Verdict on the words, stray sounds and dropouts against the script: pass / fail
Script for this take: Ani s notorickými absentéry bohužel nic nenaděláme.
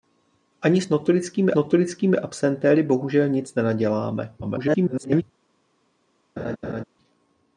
fail